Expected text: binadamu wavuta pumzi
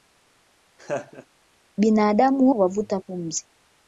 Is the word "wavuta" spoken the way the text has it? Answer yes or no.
yes